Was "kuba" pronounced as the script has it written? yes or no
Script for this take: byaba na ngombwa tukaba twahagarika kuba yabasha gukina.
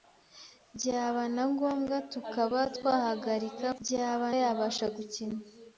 no